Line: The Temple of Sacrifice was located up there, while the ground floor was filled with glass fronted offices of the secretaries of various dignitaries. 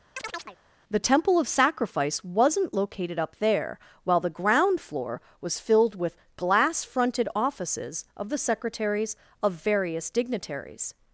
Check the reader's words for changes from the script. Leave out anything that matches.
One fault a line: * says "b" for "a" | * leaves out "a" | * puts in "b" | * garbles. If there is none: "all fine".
* says "wasn't" for "was"